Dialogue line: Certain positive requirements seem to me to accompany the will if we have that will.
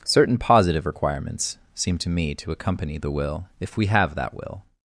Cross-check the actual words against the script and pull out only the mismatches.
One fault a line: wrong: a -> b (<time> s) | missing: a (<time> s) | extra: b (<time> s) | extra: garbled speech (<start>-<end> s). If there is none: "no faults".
no faults